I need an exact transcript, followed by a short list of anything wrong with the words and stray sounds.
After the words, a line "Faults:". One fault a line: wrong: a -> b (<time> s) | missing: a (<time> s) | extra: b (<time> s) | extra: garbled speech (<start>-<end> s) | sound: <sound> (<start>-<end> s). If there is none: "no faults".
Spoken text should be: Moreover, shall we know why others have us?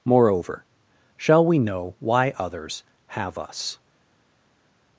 Moreover, shall we know why others have us?
Faults:
no faults